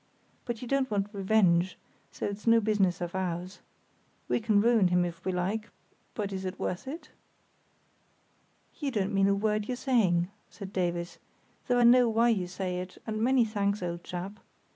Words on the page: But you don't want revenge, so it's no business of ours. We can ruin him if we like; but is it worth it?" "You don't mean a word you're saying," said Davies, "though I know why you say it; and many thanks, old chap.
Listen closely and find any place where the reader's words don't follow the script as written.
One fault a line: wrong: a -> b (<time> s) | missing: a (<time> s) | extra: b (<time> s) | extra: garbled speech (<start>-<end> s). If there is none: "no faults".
no faults